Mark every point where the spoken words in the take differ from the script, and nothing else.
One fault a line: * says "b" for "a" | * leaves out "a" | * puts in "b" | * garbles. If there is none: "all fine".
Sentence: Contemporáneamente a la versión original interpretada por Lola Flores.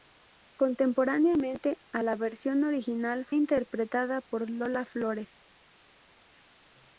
all fine